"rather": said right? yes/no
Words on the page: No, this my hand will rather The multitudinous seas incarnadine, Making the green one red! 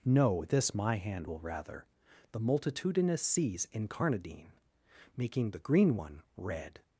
yes